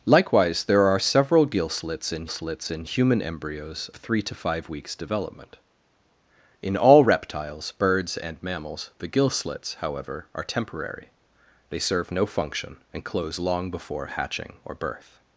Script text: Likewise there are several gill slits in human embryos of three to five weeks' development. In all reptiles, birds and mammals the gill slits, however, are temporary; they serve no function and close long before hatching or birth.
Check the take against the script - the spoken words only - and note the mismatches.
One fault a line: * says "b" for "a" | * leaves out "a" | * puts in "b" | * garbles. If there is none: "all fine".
* puts in "slits in"
* leaves out "of"